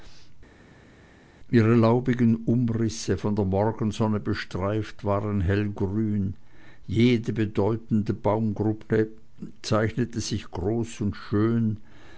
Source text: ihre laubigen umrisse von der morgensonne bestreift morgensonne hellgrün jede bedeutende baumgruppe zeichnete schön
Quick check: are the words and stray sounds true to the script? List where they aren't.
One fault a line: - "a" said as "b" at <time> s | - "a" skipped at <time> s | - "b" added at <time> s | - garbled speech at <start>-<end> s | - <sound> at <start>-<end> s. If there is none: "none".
- "morgensonne" said as "waren" at 5.1 s
- "sich groß und" added at 10.2 s